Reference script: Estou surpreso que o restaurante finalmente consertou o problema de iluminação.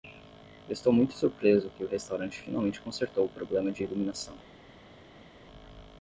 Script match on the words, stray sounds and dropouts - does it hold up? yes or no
no